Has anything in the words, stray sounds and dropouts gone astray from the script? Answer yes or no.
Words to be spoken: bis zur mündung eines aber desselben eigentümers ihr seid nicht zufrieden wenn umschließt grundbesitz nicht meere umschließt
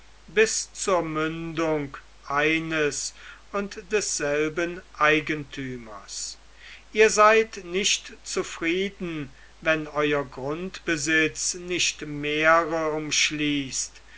yes